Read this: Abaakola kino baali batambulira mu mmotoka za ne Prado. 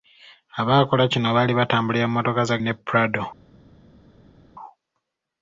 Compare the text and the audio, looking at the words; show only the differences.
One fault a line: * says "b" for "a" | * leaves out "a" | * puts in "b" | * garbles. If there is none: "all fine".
all fine